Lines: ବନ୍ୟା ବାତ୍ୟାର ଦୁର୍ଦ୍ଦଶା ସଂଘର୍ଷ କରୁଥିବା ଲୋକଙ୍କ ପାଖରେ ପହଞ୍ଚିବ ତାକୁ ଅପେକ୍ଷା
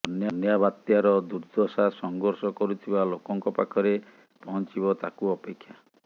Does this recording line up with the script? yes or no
yes